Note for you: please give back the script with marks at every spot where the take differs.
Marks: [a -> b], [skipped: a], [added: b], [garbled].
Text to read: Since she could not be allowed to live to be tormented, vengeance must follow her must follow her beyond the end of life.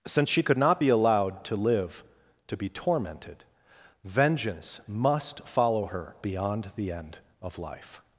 Since she could not be allowed to live to be tormented, vengeance must follow her [skipped: must follow her] beyond the end of life.